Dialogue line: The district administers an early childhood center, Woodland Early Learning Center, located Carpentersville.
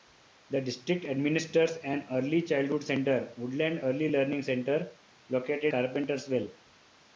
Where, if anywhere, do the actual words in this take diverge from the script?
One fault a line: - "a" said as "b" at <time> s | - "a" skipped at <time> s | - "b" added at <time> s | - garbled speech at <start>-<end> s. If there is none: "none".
none